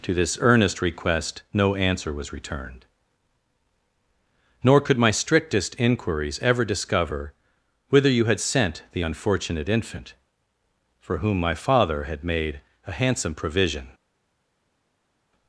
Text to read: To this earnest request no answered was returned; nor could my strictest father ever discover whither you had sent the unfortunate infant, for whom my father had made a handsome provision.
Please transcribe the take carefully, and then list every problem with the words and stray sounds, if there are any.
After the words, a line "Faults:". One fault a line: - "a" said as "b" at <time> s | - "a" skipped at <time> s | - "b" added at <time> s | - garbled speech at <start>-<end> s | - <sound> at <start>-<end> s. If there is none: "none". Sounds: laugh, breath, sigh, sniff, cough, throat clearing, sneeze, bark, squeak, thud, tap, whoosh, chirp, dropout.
To this earnest request no answer was returned; nor could my strictest inquiries ever discover whither you had sent the unfortunate infant, for whom my father had made a handsome provision.
Faults:
- "answered" said as "answer" at 1.8 s
- "father" said as "inquiries" at 5.8 s